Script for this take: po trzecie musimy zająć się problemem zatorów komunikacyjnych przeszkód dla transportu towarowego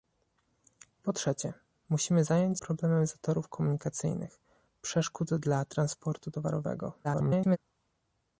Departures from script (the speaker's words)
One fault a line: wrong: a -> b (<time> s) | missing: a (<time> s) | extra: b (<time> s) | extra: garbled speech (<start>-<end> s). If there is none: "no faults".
missing: się (2.6 s)
extra: garbled speech (7.0-7.6 s)